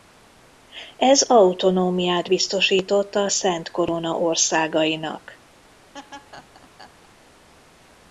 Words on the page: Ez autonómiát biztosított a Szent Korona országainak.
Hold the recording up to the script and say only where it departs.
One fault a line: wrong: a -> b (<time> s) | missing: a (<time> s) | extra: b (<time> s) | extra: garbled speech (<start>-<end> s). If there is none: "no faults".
no faults